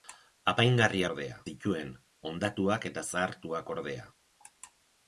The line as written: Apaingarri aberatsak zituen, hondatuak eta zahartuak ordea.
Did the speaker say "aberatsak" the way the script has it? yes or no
no